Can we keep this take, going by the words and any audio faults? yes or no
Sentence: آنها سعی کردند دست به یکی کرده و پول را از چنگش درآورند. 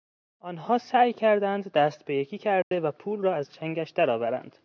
no